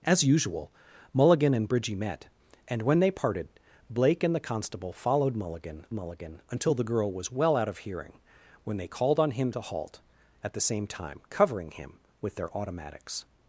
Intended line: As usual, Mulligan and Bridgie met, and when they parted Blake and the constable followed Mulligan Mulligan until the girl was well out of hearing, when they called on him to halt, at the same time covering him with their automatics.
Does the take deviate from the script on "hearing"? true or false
false